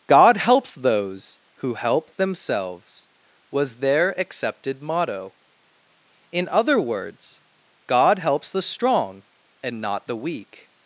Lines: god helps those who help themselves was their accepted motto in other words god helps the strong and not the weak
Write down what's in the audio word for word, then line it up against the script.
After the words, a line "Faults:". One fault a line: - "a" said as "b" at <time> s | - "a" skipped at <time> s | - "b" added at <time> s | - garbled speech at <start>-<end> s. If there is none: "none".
god helps those who help themselves was their accepted motto in other words god helps the strong and not the weak
Faults:
none